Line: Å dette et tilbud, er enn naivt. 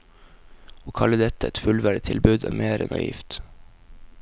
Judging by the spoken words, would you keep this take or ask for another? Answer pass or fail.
fail